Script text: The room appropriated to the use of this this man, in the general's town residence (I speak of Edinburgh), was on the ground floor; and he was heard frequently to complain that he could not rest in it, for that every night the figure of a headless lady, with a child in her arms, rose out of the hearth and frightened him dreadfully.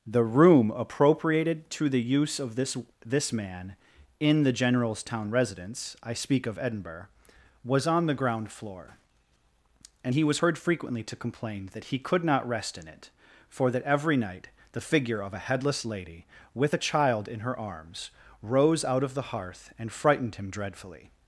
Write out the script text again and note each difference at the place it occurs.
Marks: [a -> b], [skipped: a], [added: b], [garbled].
The room appropriated to the use of this this man, in the general's town residence (I speak of Edinburgh), was on the ground floor; and he was heard frequently to complain that he could not rest in it, for that every night the figure of a headless lady, with a child in her arms, rose out of the hearth and frightened him dreadfully.